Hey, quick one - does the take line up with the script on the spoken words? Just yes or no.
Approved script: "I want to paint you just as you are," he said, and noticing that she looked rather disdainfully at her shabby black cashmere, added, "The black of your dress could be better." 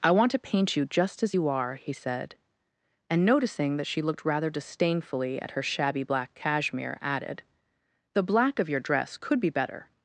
yes